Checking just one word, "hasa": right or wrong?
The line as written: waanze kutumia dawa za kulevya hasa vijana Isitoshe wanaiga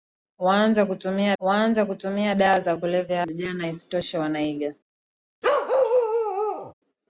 wrong